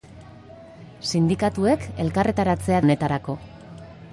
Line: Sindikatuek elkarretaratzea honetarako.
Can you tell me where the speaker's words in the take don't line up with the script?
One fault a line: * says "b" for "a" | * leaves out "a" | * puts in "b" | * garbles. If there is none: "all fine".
all fine